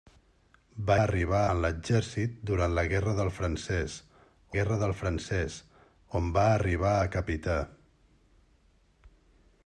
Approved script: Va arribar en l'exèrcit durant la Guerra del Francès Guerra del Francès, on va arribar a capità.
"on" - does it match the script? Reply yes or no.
yes